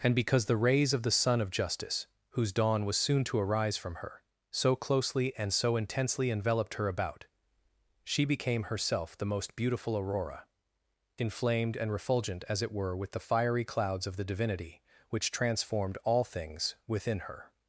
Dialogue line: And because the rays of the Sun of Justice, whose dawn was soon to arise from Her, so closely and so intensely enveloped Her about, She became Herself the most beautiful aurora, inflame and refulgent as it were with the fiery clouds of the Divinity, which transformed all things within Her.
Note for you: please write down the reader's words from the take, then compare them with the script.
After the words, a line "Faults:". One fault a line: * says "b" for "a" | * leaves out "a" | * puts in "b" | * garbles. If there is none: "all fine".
And because the rays of the Sun of Justice, whose dawn was soon to arise from Her, so closely and so intensely enveloped Her about, She became Herself the most beautiful aurora, inflamed and refulgent as it were with the fiery clouds of the Divinity, which transformed all things within Her.
Faults:
* says "inflamed" for "inflame"